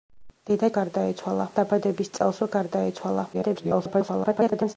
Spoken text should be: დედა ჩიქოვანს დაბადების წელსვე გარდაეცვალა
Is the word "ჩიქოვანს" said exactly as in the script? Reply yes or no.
no